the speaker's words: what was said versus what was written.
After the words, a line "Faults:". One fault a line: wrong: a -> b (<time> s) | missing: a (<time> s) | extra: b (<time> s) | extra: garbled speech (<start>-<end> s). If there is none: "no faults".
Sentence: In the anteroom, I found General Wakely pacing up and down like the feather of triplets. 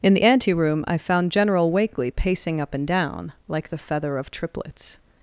In the anteroom, I found General Wakely pacing up and down like the feather of triplets.
Faults:
no faults